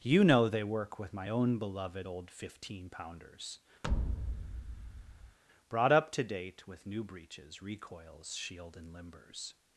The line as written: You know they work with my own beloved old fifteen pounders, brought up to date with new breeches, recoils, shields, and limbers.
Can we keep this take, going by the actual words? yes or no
no